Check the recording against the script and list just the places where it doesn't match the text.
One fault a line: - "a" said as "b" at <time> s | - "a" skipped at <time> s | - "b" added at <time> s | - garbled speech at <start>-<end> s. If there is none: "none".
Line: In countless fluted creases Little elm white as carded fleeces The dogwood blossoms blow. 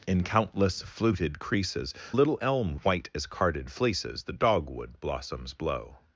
none